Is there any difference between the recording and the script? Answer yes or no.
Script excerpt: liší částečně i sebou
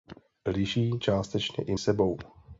no